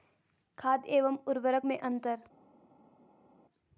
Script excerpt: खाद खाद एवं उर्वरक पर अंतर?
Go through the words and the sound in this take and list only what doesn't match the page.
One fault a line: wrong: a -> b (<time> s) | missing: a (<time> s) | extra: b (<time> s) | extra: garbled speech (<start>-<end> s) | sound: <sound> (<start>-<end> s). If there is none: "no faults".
missing: खाद (0.8 s)
wrong: पर -> में (1.6 s)